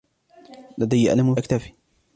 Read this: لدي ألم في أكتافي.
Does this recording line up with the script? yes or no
no